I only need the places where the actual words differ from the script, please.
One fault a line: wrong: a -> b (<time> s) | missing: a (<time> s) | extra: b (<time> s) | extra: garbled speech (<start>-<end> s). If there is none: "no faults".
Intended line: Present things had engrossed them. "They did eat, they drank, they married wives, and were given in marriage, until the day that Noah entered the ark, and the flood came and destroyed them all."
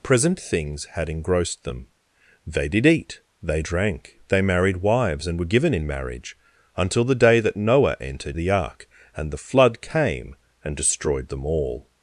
no faults